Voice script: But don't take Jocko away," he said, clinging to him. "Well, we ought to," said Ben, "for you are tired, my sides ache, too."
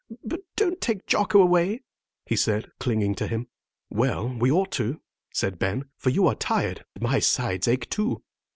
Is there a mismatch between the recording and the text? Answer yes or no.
no